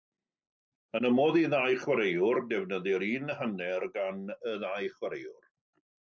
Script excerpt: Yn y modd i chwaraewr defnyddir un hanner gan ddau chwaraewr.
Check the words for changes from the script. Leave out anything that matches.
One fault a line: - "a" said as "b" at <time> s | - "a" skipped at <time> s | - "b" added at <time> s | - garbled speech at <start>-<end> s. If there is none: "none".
- "ddau" added at 1.5 s
- "y" added at 4.3 s